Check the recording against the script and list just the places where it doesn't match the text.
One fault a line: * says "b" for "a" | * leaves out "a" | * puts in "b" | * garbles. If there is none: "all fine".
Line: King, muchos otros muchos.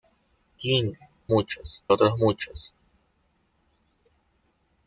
all fine